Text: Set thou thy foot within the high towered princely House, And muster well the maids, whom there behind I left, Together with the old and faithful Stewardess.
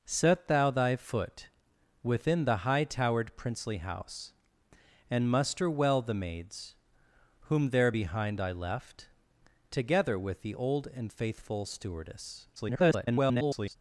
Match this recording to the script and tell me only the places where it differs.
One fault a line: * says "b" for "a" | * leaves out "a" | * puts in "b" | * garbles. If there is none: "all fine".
* garbles